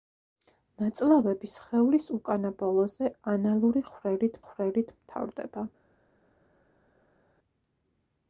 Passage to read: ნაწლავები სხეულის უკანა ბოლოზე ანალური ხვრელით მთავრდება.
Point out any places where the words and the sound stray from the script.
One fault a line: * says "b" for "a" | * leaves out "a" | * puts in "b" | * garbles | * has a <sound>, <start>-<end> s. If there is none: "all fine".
* puts in "ხვრელით"